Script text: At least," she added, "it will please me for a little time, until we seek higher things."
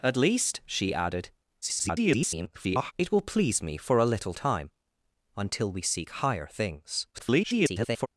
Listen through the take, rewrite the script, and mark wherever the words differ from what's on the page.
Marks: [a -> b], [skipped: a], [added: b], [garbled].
At least," she added, [garbled] "it will please me for a little time, until we seek higher things." [garbled]